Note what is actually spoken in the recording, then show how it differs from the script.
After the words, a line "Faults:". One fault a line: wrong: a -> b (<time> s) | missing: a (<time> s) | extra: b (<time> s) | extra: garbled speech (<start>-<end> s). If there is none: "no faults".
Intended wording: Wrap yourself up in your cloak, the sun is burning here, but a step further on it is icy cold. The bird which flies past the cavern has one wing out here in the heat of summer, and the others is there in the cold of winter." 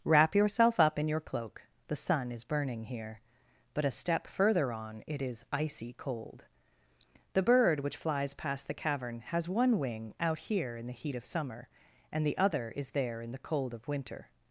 Wrap yourself up in your cloak, the sun is burning here, but a step further on it is icy cold. The bird which flies past the cavern has one wing out here in the heat of summer, and the other is there in the cold of winter."
Faults:
wrong: others -> other (12.4 s)